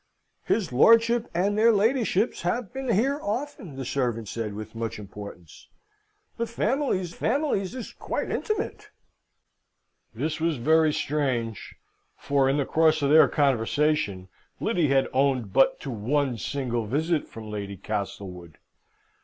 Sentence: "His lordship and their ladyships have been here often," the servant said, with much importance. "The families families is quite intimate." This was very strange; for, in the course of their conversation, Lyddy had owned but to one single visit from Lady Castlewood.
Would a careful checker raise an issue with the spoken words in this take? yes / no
no